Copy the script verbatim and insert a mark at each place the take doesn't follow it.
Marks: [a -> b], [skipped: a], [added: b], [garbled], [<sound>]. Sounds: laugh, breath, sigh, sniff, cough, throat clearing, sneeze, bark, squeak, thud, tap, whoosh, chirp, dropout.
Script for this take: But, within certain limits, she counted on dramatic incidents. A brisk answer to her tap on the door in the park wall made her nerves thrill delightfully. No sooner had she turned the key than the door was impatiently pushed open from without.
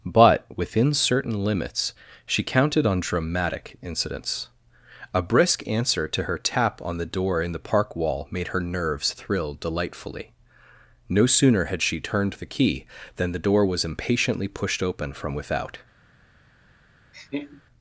But, within certain limits, she counted on dramatic incidents. A brisk answer to her tap on the door in the park wall made her nerves thrill delightfully. No sooner had she turned the key than the door was impatiently pushed open from without. [laugh]